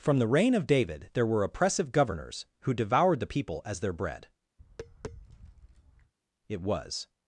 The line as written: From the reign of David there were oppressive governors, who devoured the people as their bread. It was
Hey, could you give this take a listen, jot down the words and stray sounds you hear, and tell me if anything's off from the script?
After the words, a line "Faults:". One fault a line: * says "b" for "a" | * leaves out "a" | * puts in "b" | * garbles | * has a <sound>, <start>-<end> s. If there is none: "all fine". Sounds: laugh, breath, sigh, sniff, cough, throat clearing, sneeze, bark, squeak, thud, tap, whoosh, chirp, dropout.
From the reign of David there were oppressive governors, who devoured the people as their bread. It was
Faults:
* has a tap, 4.6-6.1 s